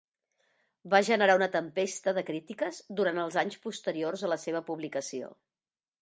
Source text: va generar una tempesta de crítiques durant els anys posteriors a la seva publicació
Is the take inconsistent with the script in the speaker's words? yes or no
no